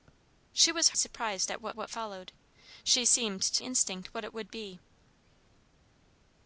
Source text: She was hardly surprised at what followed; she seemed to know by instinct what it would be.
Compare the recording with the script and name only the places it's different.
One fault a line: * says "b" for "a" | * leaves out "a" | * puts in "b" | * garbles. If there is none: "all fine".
* leaves out "hardly"
* puts in "what"
* leaves out "know by"